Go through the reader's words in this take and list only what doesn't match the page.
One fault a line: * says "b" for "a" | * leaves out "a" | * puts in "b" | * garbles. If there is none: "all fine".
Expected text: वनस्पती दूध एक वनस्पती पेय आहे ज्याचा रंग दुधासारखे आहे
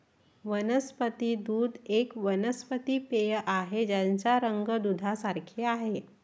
all fine